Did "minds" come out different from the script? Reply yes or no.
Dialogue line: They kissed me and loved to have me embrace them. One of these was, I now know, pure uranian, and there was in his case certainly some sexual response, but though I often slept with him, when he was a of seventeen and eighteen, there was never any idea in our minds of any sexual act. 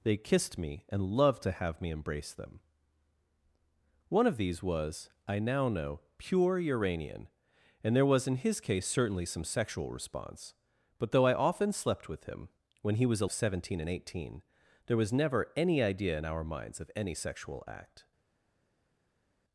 no